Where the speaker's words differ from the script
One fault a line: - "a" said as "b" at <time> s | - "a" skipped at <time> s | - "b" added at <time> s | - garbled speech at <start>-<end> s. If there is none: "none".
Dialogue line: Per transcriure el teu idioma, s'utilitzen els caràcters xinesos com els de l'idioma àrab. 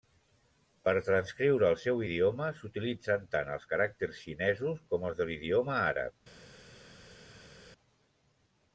- "teu" said as "seu" at 1.8 s
- "tant" added at 3.3 s